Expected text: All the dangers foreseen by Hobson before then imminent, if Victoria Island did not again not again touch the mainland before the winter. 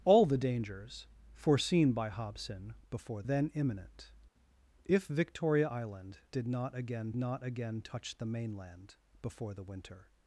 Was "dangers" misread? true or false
false